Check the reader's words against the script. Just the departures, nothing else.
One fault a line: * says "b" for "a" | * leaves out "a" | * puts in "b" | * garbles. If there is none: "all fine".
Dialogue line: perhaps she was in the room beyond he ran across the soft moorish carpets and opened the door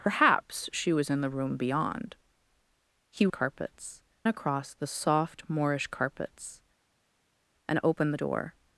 * says "carpets" for "ran"